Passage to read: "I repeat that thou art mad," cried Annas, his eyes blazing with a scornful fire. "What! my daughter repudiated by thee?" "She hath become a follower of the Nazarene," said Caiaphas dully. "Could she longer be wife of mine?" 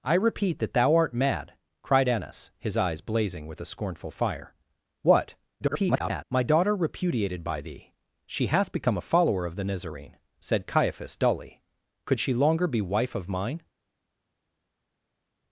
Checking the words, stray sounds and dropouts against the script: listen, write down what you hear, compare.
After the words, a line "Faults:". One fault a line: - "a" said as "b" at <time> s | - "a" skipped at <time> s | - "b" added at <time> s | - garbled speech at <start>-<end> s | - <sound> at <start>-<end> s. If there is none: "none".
"I repeat that thou art mad," cried Annas, his eyes blazing with a scornful fire. "What! [garbled] my daughter repudiated by thee?" "She hath become a follower of the Nazarene," said Caiaphas dully. "Could she longer be wife of mine?"
Faults:
- garbled speech at 5.6-6.2 s